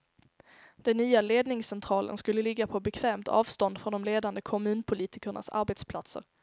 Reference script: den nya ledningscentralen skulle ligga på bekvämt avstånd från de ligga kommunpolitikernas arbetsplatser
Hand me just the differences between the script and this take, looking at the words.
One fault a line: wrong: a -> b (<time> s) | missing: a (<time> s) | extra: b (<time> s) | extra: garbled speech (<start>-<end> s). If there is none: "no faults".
wrong: ligga -> ledande (4.0 s)